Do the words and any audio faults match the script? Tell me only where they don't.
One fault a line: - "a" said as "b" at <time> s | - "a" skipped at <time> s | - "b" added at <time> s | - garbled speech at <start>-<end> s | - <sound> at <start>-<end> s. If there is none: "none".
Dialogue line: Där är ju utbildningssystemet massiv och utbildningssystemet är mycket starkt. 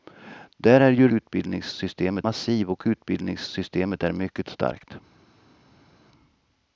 none